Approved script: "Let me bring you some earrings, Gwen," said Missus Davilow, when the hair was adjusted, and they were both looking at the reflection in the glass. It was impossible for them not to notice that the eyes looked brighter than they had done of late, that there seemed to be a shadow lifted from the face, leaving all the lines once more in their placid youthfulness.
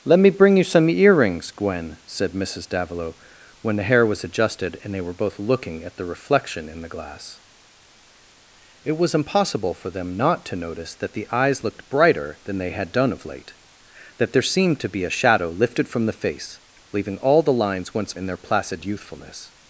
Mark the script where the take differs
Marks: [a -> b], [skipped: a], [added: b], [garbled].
"Let me bring you some earrings, Gwen," said Missus Davilow, when the hair was adjusted, and they were both looking at the reflection in the glass. It was impossible for them not to notice that the eyes looked brighter than they had done of late, that there seemed to be a shadow lifted from the face, leaving all the lines once [skipped: more] in their placid youthfulness.